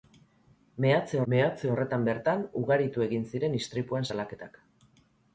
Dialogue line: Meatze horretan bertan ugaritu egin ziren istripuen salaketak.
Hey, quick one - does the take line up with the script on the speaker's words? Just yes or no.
no